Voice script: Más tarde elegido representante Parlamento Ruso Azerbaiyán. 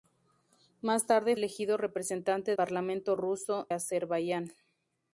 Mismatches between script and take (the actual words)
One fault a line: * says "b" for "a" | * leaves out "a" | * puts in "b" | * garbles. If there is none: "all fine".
all fine